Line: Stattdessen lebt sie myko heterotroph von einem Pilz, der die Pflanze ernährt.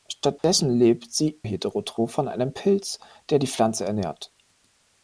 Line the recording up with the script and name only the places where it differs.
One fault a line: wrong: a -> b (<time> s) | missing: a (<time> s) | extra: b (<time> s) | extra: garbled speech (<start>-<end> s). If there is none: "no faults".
missing: myko (1.4 s)